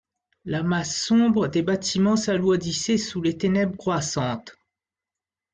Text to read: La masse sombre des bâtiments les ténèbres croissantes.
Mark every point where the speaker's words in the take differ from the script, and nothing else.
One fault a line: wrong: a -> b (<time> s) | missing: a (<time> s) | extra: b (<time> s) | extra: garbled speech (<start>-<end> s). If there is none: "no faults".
extra: s'alourdissait sous (2.1 s)